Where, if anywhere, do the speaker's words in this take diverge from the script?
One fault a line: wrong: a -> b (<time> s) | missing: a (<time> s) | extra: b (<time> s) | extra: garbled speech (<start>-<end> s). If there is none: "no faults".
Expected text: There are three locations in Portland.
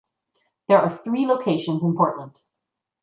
no faults